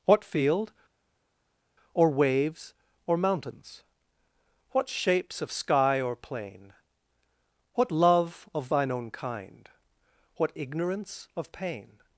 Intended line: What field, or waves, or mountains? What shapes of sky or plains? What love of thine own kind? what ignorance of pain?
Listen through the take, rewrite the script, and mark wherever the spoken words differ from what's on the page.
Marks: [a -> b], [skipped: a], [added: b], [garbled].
What field, or waves, or mountains? What shapes of sky or [plains? -> plain] What love of thine own kind? what ignorance of pain?